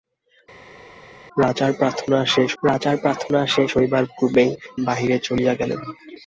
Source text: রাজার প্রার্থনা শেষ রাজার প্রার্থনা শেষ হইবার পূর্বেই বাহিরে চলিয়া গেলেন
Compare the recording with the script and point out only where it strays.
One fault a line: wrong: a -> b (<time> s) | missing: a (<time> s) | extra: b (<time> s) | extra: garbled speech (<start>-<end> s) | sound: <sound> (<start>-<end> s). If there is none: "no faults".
no faults